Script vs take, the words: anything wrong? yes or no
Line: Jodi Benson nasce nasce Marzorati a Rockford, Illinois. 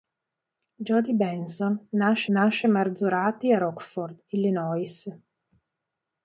no